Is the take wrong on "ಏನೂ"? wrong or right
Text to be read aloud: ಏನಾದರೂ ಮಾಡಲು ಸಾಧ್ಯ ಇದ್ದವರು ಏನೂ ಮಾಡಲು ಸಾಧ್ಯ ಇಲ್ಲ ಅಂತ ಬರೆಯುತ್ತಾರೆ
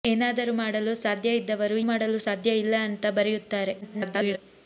wrong